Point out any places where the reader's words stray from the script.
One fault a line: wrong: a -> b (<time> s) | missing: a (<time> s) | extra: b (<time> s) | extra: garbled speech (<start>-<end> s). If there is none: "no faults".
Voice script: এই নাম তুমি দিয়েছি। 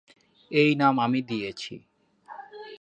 wrong: তুমি -> আমি (1.0 s)